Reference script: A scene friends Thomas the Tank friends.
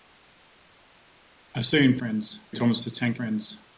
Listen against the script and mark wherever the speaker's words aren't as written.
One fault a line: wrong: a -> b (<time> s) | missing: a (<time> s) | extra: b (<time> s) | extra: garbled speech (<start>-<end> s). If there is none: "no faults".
no faults